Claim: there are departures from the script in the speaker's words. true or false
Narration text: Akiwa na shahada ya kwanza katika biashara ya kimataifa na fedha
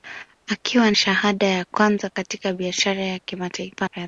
true